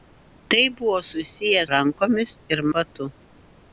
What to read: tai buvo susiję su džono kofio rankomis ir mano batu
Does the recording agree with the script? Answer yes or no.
no